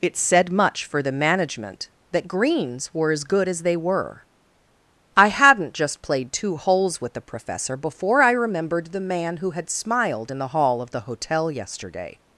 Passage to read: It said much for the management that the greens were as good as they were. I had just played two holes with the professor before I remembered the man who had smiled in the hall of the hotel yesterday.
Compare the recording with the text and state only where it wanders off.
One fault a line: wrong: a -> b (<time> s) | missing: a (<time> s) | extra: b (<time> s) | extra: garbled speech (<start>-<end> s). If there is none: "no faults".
missing: the (2.3 s)
wrong: had -> hadn't (5.3 s)